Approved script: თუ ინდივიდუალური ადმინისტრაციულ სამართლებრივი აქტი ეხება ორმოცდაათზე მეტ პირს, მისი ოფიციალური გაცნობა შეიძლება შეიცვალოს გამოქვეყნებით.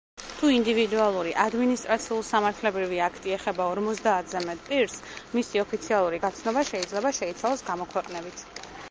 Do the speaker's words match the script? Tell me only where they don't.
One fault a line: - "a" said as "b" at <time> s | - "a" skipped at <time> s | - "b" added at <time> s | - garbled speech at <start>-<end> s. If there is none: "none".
none